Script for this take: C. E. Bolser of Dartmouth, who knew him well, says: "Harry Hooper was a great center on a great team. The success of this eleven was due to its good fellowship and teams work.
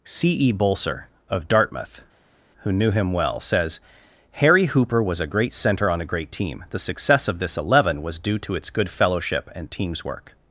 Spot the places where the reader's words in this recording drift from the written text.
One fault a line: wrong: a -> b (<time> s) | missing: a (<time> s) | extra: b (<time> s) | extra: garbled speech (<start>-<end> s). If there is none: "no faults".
no faults